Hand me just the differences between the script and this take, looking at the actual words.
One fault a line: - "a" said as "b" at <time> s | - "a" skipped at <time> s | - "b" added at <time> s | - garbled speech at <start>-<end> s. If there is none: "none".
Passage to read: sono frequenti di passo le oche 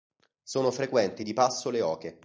none